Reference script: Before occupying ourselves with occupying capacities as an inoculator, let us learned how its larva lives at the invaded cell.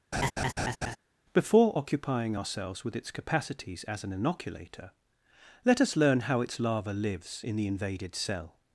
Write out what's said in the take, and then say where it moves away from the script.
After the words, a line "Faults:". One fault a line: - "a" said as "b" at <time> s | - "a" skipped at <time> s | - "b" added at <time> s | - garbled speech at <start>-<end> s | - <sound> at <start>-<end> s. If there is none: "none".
Before occupying ourselves with its capacities as an inoculator, let us learn how its larva lives in the invaded cell.
Faults:
- laugh at 0.1-1.0 s
- "occupying" said as "its" at 3.0 s
- "learned" said as "learn" at 6.0 s
- "at" said as "in" at 7.4 s